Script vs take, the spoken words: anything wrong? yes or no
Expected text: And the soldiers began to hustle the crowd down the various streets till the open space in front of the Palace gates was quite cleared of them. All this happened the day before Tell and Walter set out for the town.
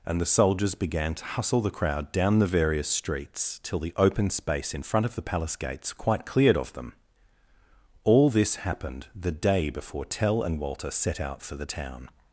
yes